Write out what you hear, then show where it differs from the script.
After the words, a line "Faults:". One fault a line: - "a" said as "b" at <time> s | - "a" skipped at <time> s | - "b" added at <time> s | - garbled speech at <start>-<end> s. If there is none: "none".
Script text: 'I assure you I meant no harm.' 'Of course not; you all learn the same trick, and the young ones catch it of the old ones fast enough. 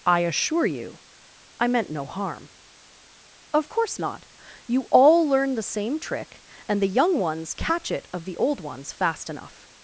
'I assure you I meant no harm.' 'Of course not; you all learn the same trick, and the young ones catch it of the old ones fast enough.
Faults:
none